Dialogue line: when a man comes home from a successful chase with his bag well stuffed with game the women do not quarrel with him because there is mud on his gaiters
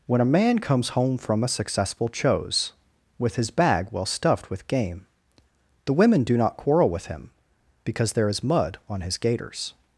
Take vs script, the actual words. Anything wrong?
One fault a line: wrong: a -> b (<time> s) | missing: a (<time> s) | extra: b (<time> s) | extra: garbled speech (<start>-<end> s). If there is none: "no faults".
wrong: chase -> chose (2.1 s)